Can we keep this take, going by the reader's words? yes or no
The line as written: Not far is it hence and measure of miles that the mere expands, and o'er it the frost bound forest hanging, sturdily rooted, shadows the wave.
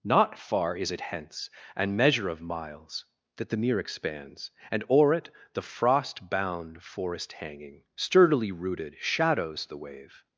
yes